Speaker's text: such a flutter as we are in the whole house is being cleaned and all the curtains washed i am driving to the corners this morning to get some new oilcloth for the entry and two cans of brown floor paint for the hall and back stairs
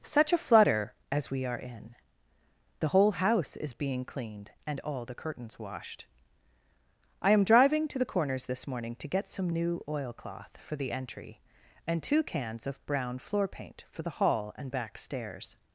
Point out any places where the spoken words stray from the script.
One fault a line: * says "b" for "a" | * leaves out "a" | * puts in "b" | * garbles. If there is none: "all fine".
all fine